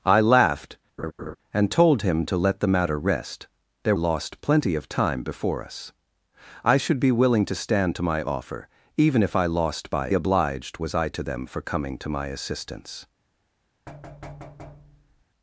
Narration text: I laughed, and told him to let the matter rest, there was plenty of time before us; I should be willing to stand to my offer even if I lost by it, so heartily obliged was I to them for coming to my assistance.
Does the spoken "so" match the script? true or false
false